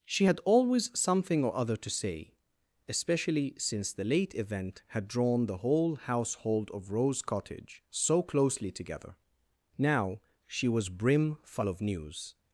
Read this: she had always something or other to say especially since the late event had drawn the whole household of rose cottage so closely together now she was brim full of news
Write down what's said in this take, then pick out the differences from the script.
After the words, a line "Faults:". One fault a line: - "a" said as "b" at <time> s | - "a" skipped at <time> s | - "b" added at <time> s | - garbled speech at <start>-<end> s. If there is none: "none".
she had always something or other to say especially since the late event had drawn the whole household of rose cottage so closely together now she was brim full of news
Faults:
none